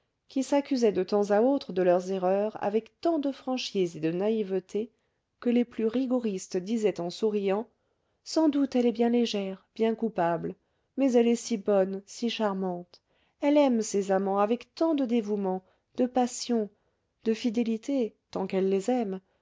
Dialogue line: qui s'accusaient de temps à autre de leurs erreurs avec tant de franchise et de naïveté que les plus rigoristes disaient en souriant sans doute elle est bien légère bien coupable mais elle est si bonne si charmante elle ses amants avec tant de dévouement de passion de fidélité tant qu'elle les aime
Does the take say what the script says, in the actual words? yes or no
no